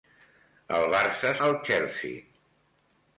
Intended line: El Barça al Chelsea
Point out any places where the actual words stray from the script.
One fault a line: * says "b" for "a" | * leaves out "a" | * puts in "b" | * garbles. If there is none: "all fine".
all fine